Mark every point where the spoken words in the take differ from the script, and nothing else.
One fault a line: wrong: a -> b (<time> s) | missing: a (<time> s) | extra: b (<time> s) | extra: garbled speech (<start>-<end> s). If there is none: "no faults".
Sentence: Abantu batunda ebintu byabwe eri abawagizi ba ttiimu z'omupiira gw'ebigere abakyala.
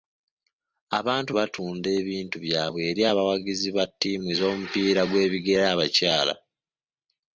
no faults